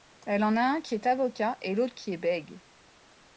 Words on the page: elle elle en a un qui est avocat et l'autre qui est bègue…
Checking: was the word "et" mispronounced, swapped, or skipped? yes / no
no